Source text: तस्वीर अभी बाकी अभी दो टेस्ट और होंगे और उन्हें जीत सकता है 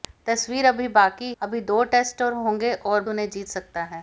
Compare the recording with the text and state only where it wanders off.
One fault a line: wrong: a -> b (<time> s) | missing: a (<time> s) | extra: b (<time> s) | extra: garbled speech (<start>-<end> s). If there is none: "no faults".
no faults